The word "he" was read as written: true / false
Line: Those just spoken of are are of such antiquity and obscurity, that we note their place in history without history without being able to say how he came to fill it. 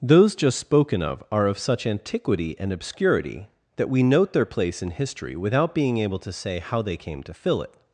false